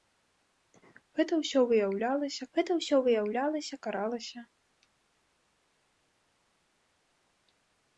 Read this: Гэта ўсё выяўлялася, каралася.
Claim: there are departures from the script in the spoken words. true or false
true